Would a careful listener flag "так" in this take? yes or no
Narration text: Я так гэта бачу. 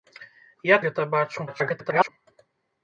yes